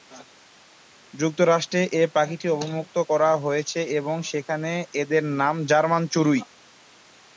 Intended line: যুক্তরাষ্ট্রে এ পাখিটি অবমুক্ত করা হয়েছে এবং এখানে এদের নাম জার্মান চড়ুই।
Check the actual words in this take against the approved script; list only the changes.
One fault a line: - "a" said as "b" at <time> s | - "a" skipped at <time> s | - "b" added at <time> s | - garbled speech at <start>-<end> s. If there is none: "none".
- "এখানে" said as "সেখানে" at 4.3 s